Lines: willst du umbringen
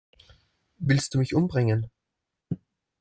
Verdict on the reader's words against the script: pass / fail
fail